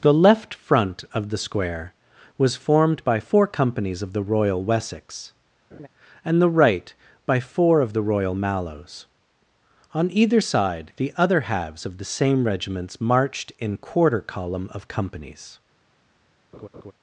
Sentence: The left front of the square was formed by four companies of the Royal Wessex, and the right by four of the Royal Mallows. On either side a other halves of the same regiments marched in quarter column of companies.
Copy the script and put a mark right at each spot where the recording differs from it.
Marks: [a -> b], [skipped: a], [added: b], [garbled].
The left front of the square was formed by four companies of the Royal Wessex, and the right by four of the Royal Mallows. On either side [a -> the] other halves of the same regiments marched in quarter column of companies.